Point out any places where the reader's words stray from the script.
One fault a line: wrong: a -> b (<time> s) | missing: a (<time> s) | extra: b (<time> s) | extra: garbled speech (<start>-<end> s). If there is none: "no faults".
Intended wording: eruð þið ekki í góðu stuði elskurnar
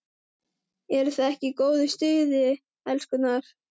no faults